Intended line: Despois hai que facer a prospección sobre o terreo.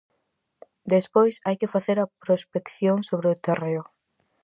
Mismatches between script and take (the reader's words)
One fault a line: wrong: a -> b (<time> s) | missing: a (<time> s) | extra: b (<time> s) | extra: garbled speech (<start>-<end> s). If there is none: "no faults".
no faults